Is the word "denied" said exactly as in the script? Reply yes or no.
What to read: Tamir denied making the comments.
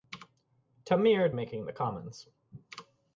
no